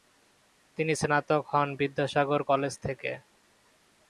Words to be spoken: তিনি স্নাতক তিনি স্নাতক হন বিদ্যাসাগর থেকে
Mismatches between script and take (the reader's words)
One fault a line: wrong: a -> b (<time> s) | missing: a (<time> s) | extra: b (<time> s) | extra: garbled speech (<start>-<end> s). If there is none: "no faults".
missing: তিনি স্নাতক (1.4 s)
extra: কলেজ (2.5 s)